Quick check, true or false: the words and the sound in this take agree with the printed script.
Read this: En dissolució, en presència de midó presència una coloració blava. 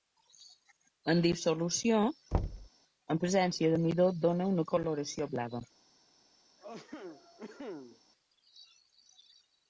false